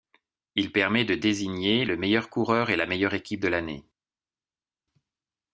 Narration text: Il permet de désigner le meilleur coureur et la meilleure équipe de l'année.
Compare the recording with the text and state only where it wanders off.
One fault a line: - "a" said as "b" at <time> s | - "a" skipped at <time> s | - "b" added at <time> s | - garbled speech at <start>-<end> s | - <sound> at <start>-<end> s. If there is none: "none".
none